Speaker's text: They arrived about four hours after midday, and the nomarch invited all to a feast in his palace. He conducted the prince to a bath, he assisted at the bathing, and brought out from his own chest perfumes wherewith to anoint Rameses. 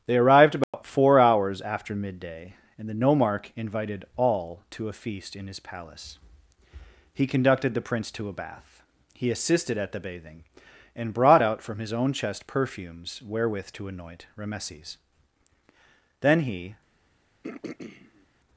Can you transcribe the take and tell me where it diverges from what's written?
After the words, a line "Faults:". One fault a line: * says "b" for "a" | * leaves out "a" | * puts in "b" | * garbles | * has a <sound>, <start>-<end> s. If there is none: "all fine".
They arrived about four hours after midday, and the nomarch invited all to a feast in his palace. He conducted the prince to a bath, he assisted at the bathing, and brought out from his own chest perfumes wherewith to anoint Rameses. Then he
Faults:
* has a dropout, 0.6-0.7 s
* puts in "Then he"
* has a throat clearing, 17.4-18.3 s